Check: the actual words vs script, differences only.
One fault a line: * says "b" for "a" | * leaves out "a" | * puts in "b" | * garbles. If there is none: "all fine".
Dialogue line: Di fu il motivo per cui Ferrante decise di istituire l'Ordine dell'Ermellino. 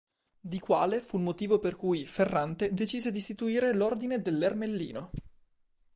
* puts in "quale"